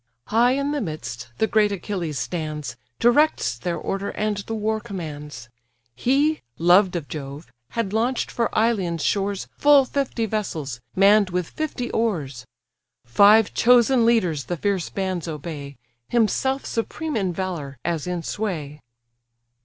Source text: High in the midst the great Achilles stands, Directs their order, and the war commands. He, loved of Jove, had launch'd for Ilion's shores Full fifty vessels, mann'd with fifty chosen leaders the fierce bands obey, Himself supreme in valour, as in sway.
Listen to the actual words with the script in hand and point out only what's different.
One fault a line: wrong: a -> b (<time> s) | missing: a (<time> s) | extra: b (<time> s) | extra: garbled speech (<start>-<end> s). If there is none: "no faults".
extra: oars Five (11.9 s)